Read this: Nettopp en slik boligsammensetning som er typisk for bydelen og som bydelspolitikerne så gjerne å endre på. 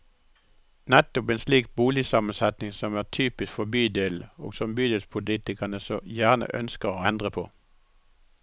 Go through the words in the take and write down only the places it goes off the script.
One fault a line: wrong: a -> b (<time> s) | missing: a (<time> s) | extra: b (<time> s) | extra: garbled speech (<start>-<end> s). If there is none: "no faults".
extra: ønsker (6.5 s)